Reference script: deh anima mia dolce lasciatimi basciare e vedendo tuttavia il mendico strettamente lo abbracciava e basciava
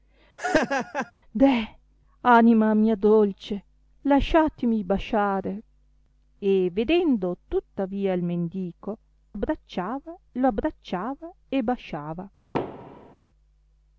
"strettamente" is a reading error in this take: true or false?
true